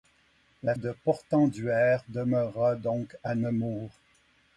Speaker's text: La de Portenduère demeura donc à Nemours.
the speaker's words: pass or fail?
pass